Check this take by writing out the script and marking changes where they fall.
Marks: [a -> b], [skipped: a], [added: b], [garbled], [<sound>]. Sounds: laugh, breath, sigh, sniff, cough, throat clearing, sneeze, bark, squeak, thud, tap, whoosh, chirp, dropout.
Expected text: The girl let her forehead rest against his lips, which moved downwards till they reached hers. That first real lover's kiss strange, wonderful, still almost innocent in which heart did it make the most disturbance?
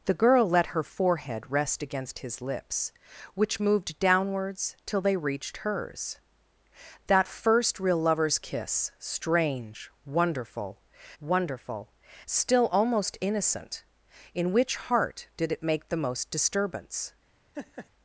The girl let her forehead rest against his lips, which moved downwards till they reached hers. That first real lover's kiss strange, wonderful, [added: wonderful] still almost innocent in which heart did it make the most disturbance? [laugh]